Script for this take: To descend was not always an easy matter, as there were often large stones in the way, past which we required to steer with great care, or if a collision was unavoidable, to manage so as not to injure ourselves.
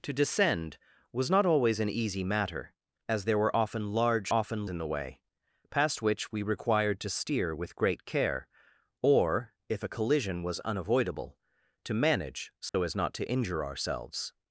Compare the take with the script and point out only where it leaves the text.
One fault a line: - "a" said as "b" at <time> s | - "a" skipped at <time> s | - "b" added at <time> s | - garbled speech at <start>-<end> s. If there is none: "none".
- "stones" said as "often" at 4.3 s